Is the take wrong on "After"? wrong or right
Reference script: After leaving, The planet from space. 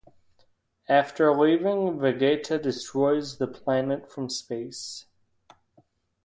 right